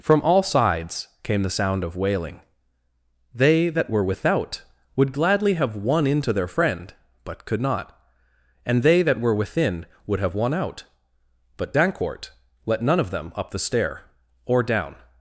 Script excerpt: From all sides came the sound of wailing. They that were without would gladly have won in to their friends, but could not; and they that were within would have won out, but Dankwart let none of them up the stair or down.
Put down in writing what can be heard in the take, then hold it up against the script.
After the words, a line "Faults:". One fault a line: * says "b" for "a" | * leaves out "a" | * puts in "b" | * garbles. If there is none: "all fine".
From all sides came the sound of wailing. They that were without would gladly have won in to their friend, but could not; and they that were within would have won out, but Dankwart let none of them up the stair or down.
Faults:
* says "friend" for "friends"